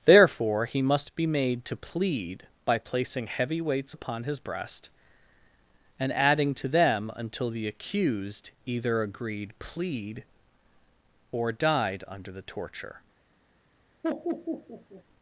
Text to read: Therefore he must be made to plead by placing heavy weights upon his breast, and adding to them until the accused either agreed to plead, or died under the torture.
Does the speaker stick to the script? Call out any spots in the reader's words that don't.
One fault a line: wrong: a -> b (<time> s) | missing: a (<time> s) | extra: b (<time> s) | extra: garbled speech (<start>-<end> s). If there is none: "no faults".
missing: to (9.5 s)